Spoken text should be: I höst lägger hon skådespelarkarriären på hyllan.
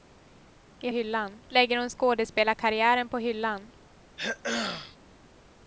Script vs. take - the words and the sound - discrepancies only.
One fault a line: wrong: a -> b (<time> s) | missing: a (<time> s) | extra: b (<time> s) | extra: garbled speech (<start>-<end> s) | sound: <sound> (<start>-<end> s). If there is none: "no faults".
wrong: höst -> hyllan (0.9 s)
sound: throat clearing (4.2-5.0 s)